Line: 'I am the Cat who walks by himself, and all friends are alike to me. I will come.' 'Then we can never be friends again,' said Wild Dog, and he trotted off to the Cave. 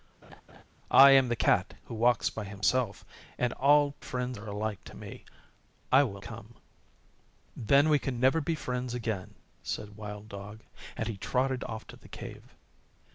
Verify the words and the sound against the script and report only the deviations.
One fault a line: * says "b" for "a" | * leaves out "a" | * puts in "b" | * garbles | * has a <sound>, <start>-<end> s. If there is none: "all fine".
* has a laugh, 0.2-0.6 s